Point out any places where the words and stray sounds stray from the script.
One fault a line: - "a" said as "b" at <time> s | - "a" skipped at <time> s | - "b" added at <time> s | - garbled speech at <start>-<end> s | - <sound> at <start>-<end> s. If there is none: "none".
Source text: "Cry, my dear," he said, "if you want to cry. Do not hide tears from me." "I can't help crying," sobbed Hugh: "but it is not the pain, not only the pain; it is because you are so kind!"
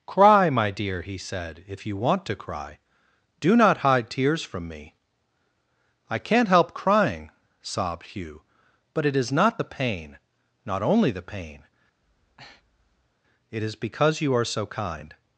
- breath at 12.0-13.2 s